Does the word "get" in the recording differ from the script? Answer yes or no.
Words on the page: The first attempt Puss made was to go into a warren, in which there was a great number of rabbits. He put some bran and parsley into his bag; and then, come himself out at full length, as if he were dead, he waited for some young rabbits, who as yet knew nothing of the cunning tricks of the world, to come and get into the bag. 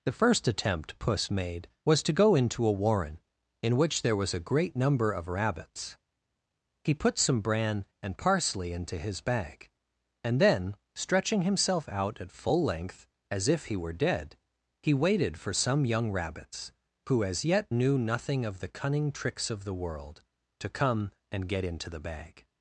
no